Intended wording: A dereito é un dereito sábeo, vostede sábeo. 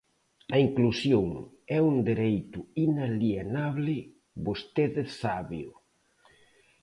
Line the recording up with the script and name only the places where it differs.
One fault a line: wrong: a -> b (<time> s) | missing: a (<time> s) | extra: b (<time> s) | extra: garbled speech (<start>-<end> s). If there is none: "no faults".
wrong: dereito -> inclusión (0.7 s)
wrong: sábeo -> inalienable (2.9 s)